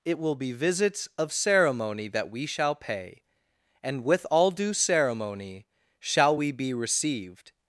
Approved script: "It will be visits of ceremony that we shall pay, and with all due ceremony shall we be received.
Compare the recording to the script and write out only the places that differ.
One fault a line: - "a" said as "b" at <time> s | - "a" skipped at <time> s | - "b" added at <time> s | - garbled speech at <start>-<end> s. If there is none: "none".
none